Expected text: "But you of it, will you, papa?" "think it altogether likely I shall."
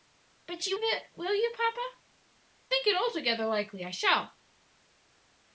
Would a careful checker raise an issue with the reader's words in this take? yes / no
no